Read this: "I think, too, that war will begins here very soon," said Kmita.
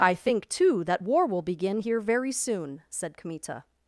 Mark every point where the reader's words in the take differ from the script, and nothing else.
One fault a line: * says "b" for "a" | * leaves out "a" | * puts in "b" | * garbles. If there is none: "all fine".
* says "begin" for "begins"